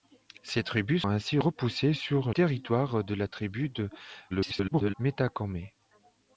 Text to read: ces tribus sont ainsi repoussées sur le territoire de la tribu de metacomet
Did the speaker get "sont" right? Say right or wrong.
wrong